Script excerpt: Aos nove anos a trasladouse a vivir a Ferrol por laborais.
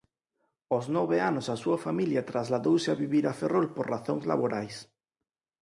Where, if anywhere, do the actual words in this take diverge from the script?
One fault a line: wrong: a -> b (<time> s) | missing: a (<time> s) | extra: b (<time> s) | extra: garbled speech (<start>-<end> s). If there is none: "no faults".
extra: súa familia (1.6 s)
extra: razóns (3.9 s)